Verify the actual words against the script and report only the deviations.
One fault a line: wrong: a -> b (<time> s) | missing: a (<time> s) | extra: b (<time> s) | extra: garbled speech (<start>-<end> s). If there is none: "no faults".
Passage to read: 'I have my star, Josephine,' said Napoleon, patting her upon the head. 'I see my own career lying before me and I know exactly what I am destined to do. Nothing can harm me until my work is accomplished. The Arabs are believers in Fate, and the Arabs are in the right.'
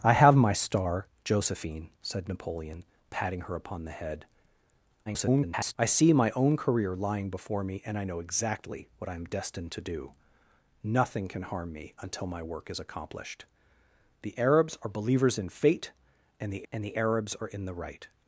extra: garbled speech (5.1-5.8 s)
extra: and the (16.7 s)